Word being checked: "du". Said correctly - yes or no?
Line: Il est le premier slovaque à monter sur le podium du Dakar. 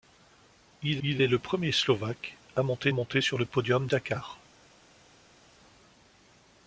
no